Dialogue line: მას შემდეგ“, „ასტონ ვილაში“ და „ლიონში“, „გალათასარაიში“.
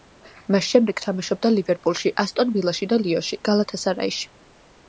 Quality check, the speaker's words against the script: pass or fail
fail